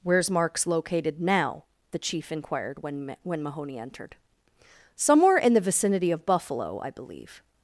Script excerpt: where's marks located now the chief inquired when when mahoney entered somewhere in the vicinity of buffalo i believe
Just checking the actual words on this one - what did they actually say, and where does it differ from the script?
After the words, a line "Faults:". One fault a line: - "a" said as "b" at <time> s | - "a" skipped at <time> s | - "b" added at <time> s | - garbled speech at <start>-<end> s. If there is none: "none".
where's marks located now the chief inquired when when mahoney entered somewhere in the vicinity of buffalo i believe
Faults:
none